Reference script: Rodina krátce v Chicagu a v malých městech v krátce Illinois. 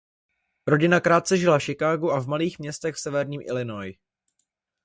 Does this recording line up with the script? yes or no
no